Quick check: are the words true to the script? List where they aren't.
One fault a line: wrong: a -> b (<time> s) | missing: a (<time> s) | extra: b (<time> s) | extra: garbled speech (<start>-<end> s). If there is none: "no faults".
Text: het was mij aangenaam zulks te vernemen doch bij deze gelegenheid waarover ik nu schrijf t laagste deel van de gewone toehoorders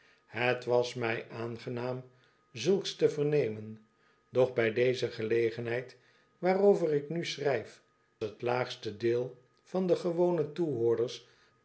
no faults